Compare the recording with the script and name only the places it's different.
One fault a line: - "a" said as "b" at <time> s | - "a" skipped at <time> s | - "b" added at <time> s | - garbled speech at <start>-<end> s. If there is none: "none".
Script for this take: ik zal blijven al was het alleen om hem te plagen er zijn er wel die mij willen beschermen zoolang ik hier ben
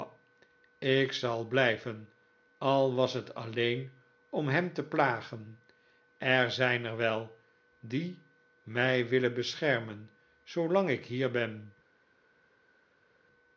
none